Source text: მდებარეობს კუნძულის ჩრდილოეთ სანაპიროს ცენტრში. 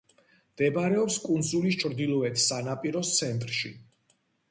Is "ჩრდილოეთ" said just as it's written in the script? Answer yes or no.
yes